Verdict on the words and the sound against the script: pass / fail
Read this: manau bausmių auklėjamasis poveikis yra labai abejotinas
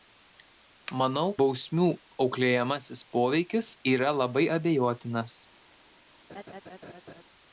fail